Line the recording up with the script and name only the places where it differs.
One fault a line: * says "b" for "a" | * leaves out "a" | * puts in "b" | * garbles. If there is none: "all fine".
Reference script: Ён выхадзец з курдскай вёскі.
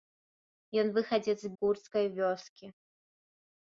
all fine